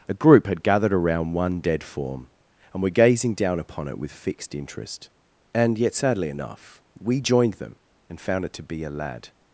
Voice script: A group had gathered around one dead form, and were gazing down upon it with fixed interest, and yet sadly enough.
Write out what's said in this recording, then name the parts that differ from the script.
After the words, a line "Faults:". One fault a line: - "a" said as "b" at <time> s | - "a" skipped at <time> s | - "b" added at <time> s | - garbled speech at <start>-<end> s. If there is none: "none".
A group had gathered around one dead form, and were gazing down upon it with fixed interest, and yet sadly enough. We joined them and found it to be a lad
Faults:
- "We joined them and found it to be a lad" added at 7.0 s